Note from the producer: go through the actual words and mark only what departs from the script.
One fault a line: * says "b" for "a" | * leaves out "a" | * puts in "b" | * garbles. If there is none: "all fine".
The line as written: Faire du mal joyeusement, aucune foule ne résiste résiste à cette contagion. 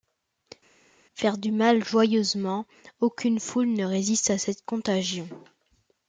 * leaves out "résiste"